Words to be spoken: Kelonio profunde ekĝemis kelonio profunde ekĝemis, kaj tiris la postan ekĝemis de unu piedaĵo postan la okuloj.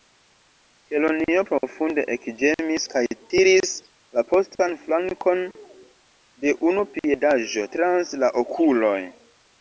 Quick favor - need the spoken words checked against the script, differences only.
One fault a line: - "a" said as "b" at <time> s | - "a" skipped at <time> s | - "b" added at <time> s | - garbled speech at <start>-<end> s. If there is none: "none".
- "kelonio profunde ekĝemis" skipped at 2.9 s
- "ekĝemis" said as "flankon" at 4.8 s
- "postan" said as "trans" at 7.7 s